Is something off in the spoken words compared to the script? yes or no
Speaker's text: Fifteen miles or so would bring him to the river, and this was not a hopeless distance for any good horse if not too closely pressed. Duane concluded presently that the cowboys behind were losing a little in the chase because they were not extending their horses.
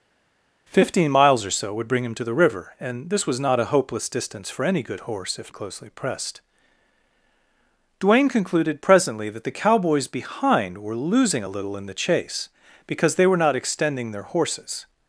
yes